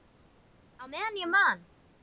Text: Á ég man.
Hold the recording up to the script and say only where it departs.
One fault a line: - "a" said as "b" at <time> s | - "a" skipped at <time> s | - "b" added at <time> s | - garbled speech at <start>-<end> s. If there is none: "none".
- "meðan" added at 0.9 s